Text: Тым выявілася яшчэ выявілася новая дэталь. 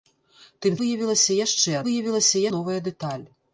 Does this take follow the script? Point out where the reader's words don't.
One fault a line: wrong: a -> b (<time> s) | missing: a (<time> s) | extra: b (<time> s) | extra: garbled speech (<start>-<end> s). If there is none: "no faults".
no faults